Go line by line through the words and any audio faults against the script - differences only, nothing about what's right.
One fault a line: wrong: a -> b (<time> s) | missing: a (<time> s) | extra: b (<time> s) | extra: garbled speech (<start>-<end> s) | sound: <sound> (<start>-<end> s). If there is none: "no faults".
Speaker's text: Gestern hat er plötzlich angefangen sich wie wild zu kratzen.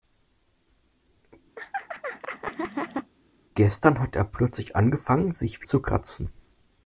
sound: laugh (1.6-3.1 s)
missing: wie wild (5.6 s)